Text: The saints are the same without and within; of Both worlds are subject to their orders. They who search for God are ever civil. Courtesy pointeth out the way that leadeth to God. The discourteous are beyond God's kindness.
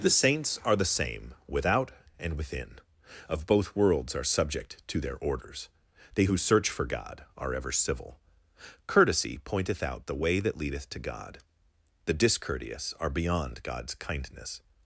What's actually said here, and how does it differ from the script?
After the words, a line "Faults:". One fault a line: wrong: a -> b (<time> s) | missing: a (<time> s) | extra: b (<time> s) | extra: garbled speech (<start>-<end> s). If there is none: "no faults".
The saints are the same without and within; of Both worlds are subject to their orders. They who search for God are ever civil. Courtesy pointeth out the way that leadeth to God. The discourteous are beyond God's kindness.
Faults:
no faults